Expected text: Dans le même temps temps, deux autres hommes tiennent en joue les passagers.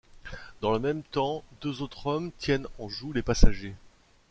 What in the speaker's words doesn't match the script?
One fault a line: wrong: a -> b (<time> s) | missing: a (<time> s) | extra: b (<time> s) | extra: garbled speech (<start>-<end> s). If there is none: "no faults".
missing: temps (1.4 s)